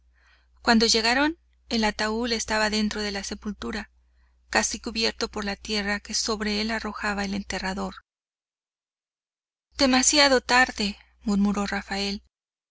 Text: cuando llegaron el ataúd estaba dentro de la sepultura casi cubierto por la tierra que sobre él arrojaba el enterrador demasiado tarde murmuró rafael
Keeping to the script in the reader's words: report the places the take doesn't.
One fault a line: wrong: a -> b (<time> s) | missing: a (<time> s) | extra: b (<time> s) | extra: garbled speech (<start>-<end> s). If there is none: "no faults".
no faults